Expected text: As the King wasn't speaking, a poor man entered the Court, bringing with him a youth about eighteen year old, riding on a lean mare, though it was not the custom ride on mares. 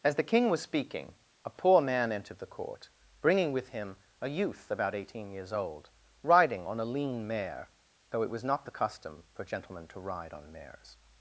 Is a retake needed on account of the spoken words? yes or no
yes